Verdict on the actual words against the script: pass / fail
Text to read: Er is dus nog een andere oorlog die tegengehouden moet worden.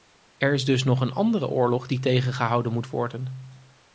pass